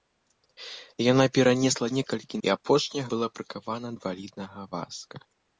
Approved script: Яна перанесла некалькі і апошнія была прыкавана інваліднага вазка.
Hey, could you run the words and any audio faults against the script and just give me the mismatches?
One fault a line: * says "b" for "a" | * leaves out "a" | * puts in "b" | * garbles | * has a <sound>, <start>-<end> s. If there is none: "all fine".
all fine